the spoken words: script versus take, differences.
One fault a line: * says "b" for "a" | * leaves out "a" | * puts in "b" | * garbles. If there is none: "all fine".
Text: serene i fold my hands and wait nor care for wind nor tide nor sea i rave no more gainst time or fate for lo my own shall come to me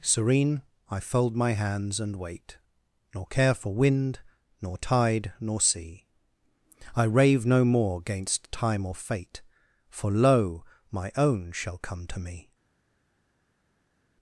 all fine